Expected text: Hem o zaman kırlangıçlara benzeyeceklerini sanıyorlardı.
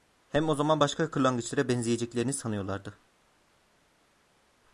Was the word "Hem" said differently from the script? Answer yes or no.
no